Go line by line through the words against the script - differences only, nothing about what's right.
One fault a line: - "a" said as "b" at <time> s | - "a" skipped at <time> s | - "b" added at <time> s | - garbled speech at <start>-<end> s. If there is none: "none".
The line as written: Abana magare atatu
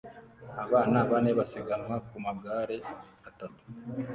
- "bane basiganwa ku" added at 1.1 s